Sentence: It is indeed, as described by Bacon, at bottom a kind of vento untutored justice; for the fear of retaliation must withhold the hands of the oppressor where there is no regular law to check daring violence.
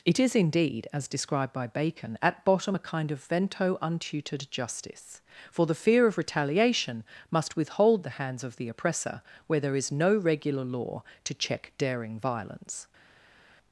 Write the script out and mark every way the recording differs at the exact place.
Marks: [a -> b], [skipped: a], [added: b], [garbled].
It is indeed, as described by Bacon, at bottom a kind of vento untutored justice; for the fear of retaliation must withhold the hands of the oppressor where there is no regular law to check daring violence.